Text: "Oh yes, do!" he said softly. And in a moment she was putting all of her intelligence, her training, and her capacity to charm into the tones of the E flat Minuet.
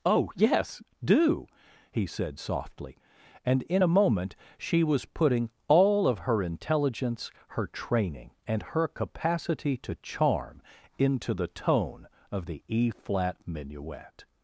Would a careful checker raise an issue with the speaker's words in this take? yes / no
yes